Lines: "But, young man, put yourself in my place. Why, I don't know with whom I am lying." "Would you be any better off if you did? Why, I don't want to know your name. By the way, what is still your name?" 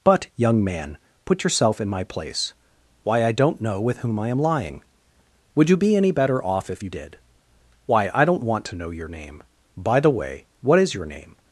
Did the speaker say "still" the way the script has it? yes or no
no